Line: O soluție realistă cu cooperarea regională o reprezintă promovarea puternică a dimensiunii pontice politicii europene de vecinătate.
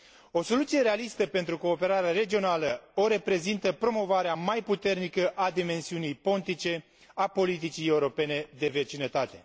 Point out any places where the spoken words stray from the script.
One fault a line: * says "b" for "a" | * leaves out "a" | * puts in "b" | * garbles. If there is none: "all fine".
* says "pentru" for "cu"
* puts in "mai"
* puts in "a"